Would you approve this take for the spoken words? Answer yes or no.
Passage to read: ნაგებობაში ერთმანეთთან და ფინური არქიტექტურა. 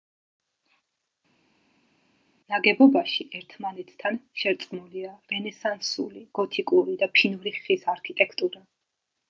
no